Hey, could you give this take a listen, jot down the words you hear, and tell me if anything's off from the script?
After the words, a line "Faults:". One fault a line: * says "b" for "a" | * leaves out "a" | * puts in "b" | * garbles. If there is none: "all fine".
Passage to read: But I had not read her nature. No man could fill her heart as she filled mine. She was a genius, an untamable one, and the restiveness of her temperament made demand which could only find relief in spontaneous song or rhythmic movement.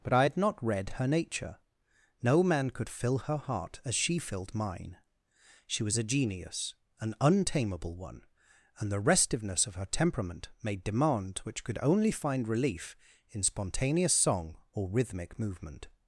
But I had not read her nature. No man could fill her heart as she filled mine. She was a genius, an untamable one, and the restiveness of her temperament made demand which could only find relief in spontaneous song or rhythmic movement.
Faults:
all fine